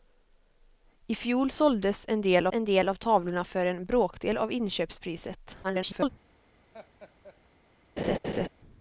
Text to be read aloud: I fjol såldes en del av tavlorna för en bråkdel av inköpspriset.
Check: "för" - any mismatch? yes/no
no